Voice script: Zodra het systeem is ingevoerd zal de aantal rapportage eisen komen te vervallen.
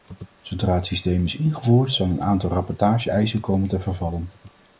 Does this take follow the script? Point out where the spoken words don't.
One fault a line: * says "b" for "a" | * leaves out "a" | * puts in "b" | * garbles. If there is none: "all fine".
* says "een" for "de"